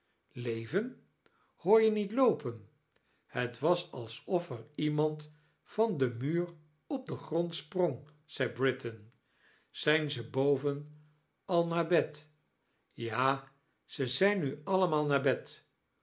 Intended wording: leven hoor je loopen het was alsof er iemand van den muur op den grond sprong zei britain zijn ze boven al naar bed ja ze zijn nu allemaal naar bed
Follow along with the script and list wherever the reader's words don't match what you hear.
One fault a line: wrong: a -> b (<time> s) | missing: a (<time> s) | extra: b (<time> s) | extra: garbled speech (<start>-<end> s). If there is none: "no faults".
extra: niet (1.9 s)